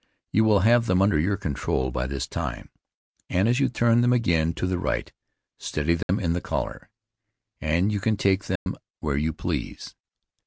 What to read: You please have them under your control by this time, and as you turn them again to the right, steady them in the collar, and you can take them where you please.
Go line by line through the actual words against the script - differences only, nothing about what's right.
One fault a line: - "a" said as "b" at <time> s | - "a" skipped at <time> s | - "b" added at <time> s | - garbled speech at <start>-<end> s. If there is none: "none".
- "please" said as "will" at 0.5 s